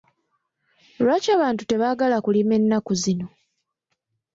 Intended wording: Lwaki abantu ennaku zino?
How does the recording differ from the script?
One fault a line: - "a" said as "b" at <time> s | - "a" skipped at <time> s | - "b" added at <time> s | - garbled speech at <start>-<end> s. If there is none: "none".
- "tebaagala kulima" added at 1.7 s